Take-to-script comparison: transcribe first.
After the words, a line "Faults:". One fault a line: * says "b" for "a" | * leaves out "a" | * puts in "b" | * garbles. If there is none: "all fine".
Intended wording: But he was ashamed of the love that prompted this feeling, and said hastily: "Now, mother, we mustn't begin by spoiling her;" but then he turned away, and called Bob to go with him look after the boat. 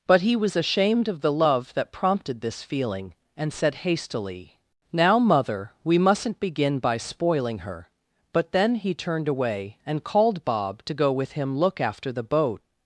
But he was ashamed of the love that prompted this feeling, and said hastily: "Now, mother, we mustn't begin by spoiling her;" but then he turned away, and called Bob to go with him look after the boat.
Faults:
all fine